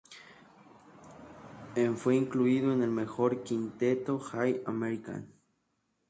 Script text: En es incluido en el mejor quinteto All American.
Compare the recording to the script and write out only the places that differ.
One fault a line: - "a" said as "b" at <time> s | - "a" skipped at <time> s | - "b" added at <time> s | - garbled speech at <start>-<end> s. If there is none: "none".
- "es" said as "fue" at 1.9 s